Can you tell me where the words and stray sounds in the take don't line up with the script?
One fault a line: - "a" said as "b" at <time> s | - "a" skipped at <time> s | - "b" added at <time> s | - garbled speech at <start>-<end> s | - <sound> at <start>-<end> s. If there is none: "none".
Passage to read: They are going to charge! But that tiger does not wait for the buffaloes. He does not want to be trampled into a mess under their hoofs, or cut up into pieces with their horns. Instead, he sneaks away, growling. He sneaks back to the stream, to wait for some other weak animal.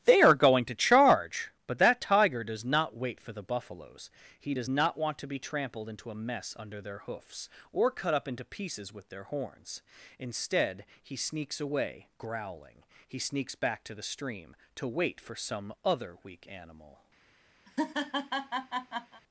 - laugh at 17.7-19.2 s